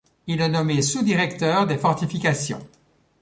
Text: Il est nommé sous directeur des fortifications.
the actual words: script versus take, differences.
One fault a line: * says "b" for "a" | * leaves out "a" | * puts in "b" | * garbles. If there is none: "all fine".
all fine